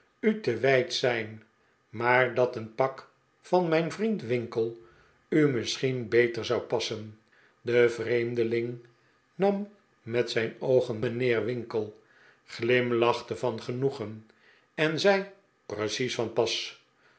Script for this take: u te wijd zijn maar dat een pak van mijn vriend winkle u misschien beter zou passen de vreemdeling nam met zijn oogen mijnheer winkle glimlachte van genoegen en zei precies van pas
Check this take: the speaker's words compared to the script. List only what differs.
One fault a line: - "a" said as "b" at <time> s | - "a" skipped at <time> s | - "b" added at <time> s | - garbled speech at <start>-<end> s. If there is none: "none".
none